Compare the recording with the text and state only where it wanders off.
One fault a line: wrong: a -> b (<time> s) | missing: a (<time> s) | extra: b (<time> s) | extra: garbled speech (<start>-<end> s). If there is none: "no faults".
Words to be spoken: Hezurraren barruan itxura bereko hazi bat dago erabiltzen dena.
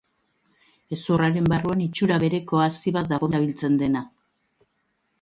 no faults